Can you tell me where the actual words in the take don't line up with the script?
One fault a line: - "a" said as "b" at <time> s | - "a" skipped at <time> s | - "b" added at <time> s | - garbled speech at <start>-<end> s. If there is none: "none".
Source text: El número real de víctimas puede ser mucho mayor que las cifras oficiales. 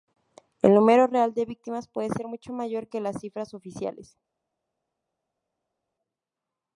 none